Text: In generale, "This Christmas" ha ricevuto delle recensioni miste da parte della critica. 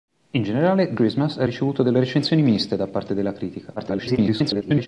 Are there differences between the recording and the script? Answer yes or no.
yes